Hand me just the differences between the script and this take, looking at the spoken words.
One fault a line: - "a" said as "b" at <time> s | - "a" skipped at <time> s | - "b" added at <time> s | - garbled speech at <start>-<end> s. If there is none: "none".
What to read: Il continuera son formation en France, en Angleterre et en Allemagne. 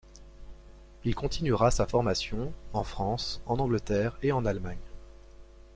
- "son" said as "sa" at 1.7 s